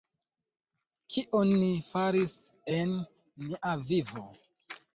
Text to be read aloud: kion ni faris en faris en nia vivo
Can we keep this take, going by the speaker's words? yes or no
no